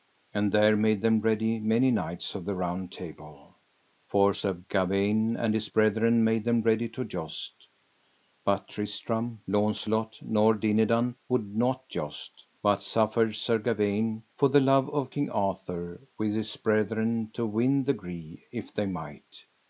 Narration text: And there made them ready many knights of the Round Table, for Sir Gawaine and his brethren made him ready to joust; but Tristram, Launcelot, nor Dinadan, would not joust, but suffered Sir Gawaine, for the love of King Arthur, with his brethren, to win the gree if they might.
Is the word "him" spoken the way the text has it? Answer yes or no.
no